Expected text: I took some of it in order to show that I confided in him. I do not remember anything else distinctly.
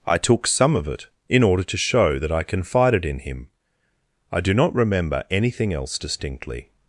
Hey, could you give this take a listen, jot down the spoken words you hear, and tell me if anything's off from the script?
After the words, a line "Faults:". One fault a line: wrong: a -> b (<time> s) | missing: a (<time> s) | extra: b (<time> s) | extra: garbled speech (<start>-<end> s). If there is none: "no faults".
I took some of it in order to show that I confided in him. I do not remember anything else distinctly.
Faults:
no faults